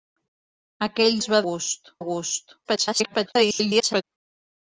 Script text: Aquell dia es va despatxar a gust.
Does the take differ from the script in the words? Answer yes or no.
yes